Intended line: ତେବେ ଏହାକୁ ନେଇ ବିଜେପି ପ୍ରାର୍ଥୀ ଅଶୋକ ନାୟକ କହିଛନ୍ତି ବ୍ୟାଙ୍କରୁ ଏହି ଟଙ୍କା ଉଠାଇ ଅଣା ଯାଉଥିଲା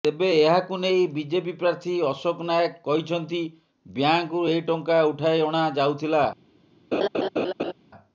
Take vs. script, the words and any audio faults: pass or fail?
fail